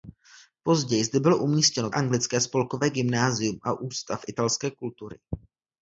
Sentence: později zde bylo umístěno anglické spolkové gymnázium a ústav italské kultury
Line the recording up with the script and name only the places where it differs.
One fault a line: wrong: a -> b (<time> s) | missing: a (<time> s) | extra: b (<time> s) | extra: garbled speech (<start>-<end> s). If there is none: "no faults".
no faults